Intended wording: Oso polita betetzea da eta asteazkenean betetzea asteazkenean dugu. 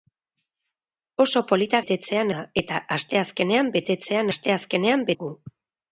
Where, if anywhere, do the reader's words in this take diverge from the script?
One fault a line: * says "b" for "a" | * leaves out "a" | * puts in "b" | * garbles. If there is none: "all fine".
all fine